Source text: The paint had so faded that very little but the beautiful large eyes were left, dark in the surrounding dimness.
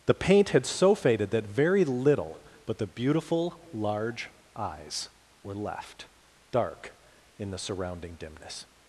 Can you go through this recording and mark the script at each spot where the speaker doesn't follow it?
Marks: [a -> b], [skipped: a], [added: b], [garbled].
The paint had so faded that very little but the beautiful large eyes were left, dark in the surrounding dimness.